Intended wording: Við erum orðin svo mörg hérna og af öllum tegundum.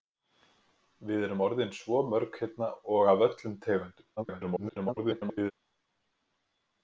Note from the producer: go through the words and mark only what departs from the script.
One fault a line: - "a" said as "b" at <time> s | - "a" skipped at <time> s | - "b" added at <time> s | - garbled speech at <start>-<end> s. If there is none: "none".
- garbled speech at 4.2-5.5 s